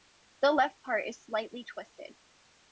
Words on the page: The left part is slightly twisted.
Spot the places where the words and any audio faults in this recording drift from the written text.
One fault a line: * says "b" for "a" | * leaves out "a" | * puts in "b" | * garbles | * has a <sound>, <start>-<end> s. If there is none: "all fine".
all fine